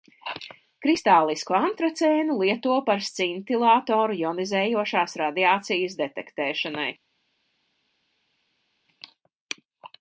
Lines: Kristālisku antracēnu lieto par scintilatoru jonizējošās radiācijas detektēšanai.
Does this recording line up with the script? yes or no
yes